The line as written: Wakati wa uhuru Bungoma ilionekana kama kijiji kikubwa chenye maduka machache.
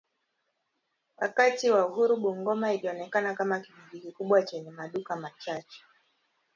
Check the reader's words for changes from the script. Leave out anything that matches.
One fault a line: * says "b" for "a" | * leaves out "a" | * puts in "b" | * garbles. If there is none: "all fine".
all fine